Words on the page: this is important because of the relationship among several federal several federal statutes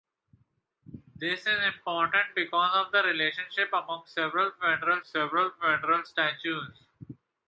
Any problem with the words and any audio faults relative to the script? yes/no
no